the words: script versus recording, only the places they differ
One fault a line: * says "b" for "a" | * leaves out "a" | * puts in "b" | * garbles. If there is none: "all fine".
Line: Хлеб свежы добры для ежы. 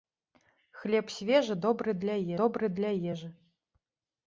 * puts in "добры для"